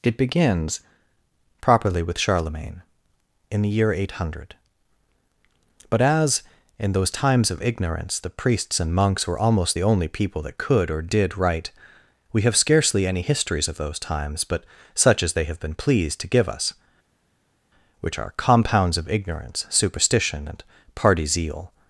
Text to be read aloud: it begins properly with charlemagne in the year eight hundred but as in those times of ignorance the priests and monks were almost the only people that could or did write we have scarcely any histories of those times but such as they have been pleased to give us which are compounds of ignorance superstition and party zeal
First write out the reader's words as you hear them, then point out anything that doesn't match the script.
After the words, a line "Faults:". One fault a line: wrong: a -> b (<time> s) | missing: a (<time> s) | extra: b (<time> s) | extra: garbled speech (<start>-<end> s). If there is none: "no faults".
it begins properly with charlemagne in the year eight hundred but as in those times of ignorance the priests and monks were almost the only people that could or did write we have scarcely any histories of those times but such as they have been pleased to give us which are compounds of ignorance superstition and party zeal
Faults:
no faults